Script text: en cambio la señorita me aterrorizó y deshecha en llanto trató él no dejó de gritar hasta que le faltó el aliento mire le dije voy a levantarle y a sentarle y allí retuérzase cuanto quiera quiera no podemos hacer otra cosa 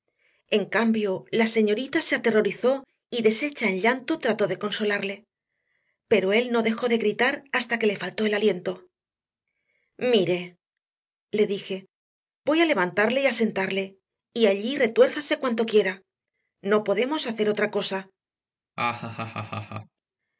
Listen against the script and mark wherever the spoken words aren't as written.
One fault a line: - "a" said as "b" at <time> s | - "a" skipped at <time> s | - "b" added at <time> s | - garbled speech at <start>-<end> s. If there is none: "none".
- "me" said as "se" at 2.0 s
- "de consolarle pero" added at 4.5 s
- "quiera" skipped at 16.0 s